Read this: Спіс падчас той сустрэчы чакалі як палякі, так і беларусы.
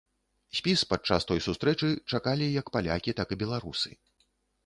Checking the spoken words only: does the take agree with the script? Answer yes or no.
yes